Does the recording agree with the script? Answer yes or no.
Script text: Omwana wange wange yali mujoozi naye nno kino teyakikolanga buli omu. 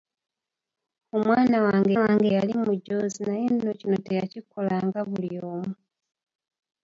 yes